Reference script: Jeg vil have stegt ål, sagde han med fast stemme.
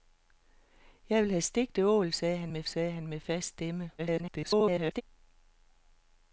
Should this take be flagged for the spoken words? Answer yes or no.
yes